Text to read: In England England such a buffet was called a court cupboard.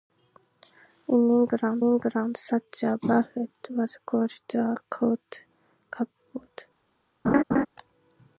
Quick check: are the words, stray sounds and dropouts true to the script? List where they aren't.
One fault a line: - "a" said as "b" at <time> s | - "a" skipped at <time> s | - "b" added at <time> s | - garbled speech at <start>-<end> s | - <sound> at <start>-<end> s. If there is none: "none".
- laugh at 7.2-7.7 s